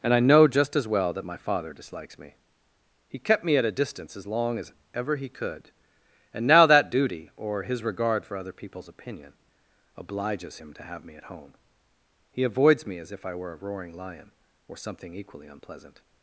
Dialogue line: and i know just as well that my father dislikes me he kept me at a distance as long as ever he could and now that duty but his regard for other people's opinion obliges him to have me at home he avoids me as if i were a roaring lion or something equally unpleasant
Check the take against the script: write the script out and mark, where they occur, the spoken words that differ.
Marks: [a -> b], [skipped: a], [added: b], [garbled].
and i know just as well that my father dislikes me he kept me at a distance as long as ever he could and now that duty [but -> or] his regard for other people's opinion obliges him to have me at home he avoids me as if i were a roaring lion or something equally unpleasant